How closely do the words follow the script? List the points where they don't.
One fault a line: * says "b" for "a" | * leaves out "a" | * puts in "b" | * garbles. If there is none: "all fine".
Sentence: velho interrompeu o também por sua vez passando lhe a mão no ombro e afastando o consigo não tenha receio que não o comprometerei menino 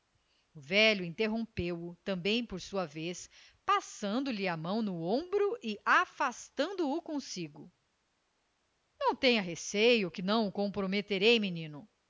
all fine